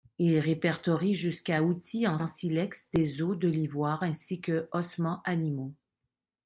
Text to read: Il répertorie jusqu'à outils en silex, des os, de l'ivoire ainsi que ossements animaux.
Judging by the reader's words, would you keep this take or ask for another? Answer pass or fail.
fail